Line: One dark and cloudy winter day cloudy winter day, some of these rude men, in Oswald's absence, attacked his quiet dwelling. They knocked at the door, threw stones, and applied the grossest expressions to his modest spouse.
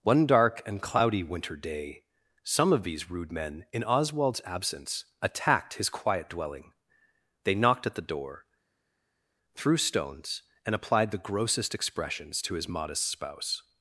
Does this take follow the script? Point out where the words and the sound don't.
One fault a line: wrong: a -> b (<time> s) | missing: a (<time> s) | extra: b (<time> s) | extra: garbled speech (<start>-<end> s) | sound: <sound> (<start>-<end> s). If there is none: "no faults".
missing: cloudy winter day (2.0 s)